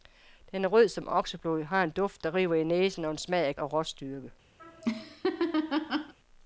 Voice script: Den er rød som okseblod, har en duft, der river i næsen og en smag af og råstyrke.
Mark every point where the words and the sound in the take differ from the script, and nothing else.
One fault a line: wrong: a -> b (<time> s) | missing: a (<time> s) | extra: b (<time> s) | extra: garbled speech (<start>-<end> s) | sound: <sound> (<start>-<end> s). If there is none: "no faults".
sound: laugh (4.6-6.1 s)